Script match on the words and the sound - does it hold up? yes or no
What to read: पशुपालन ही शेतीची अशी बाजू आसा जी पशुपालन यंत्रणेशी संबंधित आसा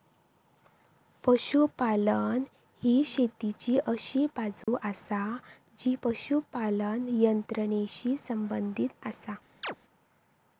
no